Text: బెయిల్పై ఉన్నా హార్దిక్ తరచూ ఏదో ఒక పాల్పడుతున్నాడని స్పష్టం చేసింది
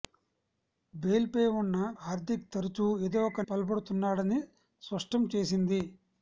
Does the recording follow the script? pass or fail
pass